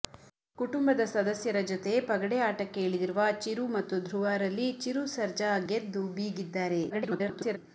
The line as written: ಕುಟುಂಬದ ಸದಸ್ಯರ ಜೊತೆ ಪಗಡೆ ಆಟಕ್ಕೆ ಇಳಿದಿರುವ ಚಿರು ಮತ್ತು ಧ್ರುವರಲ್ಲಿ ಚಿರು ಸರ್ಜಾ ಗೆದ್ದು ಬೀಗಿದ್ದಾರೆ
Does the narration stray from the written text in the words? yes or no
yes